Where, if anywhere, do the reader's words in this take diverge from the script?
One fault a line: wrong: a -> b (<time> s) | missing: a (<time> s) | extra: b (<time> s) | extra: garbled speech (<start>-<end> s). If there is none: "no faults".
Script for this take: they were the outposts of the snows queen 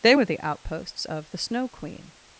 wrong: snows -> snow (1.4 s)